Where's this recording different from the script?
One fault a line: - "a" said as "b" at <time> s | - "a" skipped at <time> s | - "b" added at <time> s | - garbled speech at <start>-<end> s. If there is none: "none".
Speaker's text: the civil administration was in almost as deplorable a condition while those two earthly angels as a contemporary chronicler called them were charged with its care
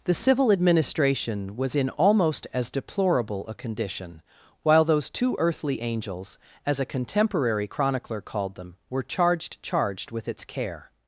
- "charged" added at 9.6 s